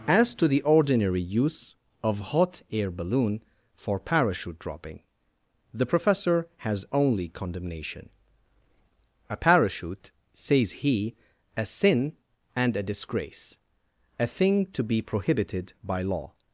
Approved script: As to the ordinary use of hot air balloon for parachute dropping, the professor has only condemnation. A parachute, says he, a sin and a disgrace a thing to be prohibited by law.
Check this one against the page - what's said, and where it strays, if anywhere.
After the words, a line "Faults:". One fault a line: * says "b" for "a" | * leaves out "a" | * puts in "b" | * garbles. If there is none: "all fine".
As to the ordinary use of hot air balloon for parachute dropping, the professor has only condemnation. A parachute, says he, a sin and a disgrace a thing to be prohibited by law.
Faults:
all fine